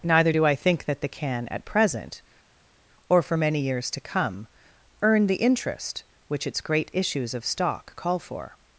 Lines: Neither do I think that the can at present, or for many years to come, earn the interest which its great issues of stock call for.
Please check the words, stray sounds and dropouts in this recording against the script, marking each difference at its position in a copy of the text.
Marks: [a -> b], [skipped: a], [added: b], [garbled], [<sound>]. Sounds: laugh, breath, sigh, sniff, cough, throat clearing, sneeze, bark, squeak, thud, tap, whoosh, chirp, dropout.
Neither do I think that the can at present, or for many years to come, earn the interest which its great issues of stock call for.